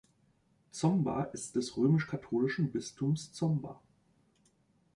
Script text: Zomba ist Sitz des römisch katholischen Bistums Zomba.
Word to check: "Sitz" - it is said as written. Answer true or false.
false